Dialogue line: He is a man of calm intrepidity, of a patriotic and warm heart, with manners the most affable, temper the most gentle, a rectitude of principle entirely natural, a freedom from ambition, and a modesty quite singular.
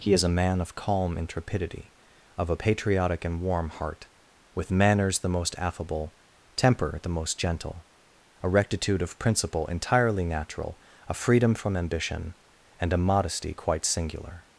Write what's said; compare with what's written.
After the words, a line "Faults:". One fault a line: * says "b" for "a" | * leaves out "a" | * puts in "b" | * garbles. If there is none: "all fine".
He is a man of calm intrepidity, of a patriotic and warm heart, with manners the most affable, temper the most gentle, a rectitude of principle entirely natural, a freedom from ambition, and a modesty quite singular.
Faults:
all fine